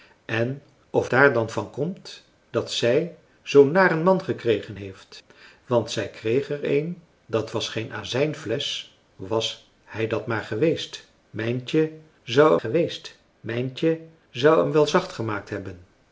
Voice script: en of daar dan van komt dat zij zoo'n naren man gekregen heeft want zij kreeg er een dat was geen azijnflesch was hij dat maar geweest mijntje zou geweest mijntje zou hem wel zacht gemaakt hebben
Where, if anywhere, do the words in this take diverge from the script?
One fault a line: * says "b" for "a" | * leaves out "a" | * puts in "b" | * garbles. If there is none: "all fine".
all fine